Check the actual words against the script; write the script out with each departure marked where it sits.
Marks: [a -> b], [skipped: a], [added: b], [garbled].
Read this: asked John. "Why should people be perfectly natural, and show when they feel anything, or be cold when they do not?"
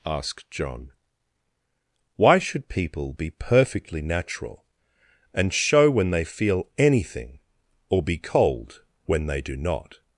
asked John. "Why should people be perfectly natural, and show when they feel anything, or be cold when they do not?"